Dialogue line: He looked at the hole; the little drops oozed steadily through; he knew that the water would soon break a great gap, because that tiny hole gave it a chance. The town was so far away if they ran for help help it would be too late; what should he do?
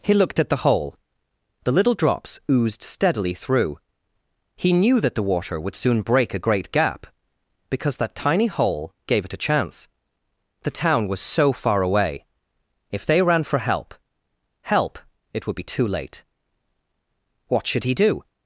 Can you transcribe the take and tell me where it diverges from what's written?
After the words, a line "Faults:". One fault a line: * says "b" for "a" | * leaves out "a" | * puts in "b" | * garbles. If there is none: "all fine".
He looked at the hole; the little drops oozed steadily through; he knew that the water would soon break a great gap, because that tiny hole gave it a chance. The town was so far away if they ran for help help it would be too late; what should he do?
Faults:
all fine